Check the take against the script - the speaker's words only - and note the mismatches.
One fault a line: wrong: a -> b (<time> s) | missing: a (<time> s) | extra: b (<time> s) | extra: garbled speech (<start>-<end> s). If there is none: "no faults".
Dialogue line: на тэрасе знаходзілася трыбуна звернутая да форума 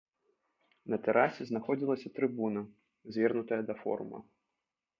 no faults